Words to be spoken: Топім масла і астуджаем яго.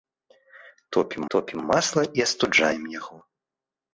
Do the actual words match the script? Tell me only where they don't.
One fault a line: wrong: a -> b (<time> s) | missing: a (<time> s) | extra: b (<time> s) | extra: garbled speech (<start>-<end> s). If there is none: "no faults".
extra: топім (1.3 s)